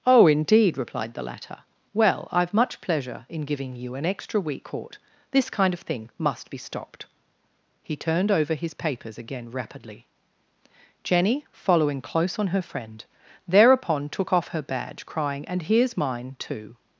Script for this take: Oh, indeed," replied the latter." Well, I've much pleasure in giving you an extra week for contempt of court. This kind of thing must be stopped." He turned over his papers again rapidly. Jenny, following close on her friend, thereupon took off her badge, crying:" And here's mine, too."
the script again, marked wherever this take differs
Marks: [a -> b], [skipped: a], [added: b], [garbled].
Oh, indeed," replied the latter." Well, I've much pleasure in giving you an extra week [skipped: for contempt of] court. This kind of thing must be stopped." He turned over his papers again rapidly. Jenny, following close on her friend, thereupon took off her badge, crying:" And here's mine, too."